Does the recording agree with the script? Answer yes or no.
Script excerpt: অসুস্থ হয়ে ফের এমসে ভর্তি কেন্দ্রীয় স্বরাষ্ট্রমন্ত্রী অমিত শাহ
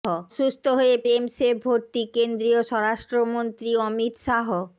no